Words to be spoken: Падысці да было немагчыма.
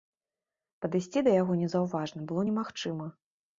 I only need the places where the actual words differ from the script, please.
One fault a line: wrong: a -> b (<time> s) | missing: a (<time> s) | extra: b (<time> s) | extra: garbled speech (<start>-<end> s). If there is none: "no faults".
extra: яго незаўважна (1.4 s)